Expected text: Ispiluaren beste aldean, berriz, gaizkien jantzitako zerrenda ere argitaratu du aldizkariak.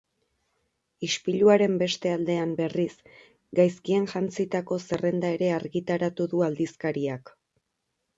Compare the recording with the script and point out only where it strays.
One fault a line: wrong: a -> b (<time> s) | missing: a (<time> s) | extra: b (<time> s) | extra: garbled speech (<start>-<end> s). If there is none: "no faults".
no faults